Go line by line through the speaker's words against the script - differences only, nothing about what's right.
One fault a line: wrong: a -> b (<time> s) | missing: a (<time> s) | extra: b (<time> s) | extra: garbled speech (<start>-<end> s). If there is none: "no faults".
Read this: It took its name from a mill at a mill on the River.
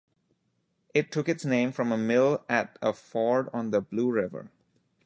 wrong: mill -> ford (2.9 s)
extra: Blue (3.8 s)